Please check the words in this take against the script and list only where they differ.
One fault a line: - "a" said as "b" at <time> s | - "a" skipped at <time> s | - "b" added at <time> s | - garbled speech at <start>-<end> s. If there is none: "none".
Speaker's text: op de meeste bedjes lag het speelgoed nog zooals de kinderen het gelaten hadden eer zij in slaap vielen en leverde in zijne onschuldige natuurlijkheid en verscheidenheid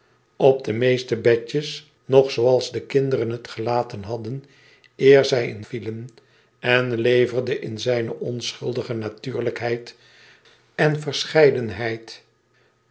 - "lag het speelgoed" skipped at 1.9 s
- "slaap" skipped at 5.6 s